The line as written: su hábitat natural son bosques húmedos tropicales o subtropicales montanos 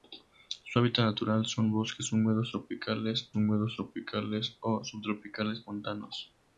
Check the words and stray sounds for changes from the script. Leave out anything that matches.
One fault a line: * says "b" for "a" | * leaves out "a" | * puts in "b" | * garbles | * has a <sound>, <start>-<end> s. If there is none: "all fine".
* puts in "húmedos tropicales"